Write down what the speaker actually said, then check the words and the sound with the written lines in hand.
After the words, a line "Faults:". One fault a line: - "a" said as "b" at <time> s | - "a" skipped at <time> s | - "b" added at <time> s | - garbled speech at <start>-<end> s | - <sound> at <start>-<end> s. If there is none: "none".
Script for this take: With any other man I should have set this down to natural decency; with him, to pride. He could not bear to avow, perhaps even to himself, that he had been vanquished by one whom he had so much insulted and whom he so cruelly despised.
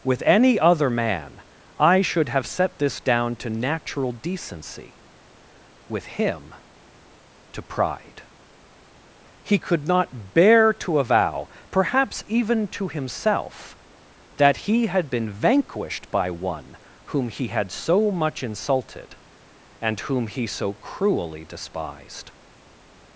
With any other man I should have set this down to natural decency; with him, to pride. He could not bear to avow, perhaps even to himself, that he had been vanquished by one whom he had so much insulted and whom he so cruelly despised.
Faults:
none